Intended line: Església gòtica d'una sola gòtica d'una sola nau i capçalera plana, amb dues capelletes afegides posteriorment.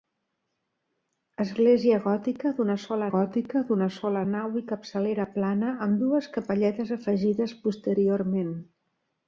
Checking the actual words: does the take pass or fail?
pass